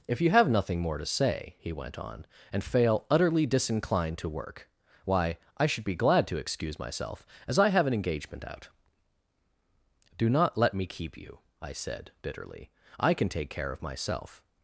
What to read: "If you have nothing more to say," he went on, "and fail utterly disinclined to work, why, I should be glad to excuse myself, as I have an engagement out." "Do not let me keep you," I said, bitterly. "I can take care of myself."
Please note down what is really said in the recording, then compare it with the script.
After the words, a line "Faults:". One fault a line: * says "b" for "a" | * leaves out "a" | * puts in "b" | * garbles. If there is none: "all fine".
"If you have nothing more to say," he went on, "and fail utterly disinclined to work, why, I should be glad to excuse myself, as I have an engagement out." "Do not let me keep you," I said, bitterly. "I can take care of myself."
Faults:
all fine